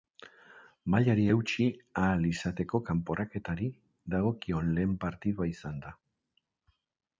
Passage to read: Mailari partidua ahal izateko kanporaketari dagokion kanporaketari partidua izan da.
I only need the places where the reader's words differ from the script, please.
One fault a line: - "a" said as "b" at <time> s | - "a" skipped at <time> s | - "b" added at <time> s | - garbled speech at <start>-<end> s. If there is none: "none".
- "partidua" said as "eutsi" at 1.3 s
- "kanporaketari" said as "lehen" at 4.8 s